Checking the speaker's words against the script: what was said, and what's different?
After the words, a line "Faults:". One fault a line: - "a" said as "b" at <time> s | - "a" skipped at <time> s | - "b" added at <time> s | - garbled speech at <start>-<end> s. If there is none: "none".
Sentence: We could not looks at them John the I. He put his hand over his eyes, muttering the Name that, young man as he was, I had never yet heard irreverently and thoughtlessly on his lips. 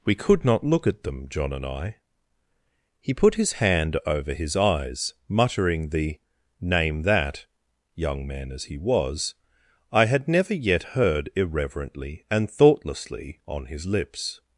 We could not look at them John and I. He put his hand over his eyes, muttering the Name that, young man as he was, I had never yet heard irreverently and thoughtlessly on his lips.
Faults:
- "looks" said as "look" at 0.6 s
- "the" said as "and" at 1.5 s